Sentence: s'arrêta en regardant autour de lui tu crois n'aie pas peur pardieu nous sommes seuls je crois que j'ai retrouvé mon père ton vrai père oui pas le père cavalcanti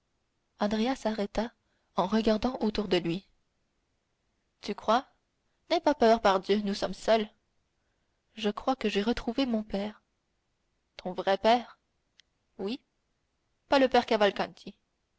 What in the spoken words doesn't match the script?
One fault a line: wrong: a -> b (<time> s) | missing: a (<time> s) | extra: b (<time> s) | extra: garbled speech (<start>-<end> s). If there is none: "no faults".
no faults